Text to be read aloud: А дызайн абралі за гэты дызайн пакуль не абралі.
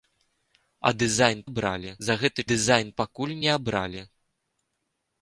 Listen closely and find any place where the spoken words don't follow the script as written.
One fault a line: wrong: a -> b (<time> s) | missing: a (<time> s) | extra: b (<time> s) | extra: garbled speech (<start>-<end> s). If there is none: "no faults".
no faults